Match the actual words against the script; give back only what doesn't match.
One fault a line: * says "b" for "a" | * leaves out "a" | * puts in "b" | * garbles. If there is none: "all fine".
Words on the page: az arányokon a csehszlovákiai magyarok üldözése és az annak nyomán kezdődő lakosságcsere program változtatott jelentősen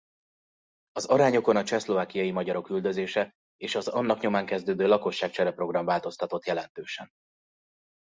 all fine